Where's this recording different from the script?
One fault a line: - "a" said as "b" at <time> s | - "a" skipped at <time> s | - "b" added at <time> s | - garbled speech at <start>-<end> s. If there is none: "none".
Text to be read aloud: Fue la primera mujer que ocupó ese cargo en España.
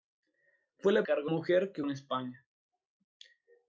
- "primera" said as "cargo" at 1.0 s
- "ocupó ese cargo" skipped at 1.8 s